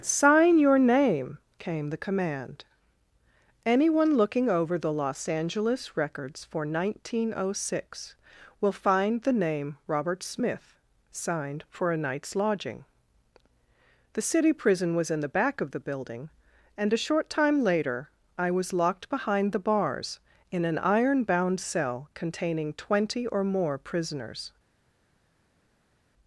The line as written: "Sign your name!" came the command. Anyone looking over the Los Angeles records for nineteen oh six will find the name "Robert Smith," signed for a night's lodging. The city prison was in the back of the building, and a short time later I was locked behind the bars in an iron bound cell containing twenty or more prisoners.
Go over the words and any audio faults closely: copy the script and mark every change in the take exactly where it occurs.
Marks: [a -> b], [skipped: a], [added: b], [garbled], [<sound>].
"Sign your name!" came the command. Anyone looking over the Los Angeles records for nineteen oh six will find the name "Robert Smith," signed for a night's lodging. The city prison was in the back of the building, and a short time later I was locked behind the bars in an iron bound cell containing twenty or more prisoners.